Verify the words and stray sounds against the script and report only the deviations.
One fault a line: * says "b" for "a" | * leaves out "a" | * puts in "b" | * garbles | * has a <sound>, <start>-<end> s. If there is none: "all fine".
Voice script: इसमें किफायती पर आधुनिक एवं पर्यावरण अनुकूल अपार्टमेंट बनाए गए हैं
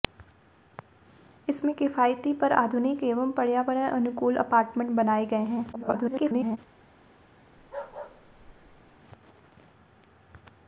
* garbles
* has a bark, 7.6-9.0 s